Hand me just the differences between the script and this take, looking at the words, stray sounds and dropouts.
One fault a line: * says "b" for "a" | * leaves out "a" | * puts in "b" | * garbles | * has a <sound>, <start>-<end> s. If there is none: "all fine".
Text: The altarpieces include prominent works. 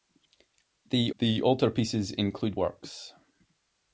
* puts in "the"
* leaves out "prominent"